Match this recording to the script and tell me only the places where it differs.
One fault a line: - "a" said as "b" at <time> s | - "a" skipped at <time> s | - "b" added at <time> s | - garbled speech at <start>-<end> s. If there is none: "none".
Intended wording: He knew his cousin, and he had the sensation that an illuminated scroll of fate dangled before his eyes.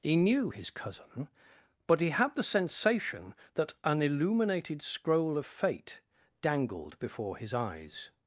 - "and" said as "but" at 1.9 s